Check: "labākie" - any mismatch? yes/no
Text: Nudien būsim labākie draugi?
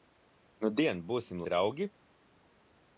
yes